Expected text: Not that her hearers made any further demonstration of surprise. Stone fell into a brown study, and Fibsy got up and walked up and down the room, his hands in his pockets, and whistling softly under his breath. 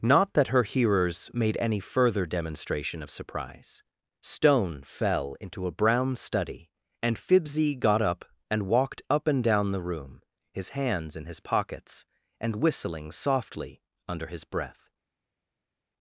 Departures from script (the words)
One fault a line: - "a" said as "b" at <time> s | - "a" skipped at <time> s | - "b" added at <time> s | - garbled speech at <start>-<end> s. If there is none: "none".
none